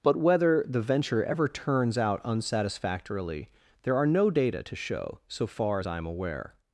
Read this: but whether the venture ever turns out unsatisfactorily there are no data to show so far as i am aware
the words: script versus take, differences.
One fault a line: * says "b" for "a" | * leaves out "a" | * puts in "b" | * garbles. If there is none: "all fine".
all fine